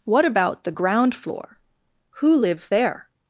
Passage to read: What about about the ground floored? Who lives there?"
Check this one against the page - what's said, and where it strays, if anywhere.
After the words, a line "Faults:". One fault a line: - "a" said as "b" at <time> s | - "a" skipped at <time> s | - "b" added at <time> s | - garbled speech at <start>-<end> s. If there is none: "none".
What about the ground floor? Who lives there?"
Faults:
- "about" skipped at 0.6 s
- "floored" said as "floor" at 1.1 s